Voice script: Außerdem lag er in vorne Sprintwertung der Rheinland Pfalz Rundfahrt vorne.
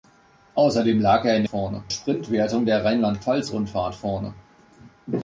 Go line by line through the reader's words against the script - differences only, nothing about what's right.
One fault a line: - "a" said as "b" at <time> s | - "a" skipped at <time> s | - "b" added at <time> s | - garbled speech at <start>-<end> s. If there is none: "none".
none